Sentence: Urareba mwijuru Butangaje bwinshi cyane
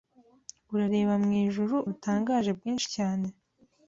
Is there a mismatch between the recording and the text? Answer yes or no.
no